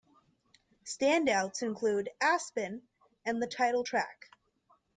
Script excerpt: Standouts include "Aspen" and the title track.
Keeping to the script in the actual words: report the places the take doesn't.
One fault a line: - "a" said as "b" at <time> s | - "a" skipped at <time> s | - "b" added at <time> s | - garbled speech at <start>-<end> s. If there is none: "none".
none